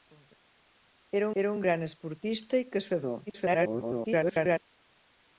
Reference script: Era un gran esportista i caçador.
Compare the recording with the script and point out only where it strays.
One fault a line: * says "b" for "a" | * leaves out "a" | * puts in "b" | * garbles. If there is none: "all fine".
* puts in "era"
* garbles